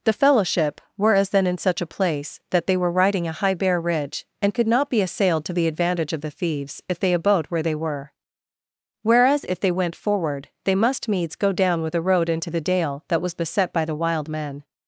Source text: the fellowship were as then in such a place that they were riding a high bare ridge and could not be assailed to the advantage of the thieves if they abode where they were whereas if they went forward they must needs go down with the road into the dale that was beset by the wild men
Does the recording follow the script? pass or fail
pass